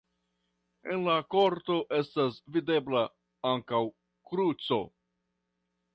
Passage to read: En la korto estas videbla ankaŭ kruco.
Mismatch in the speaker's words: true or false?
false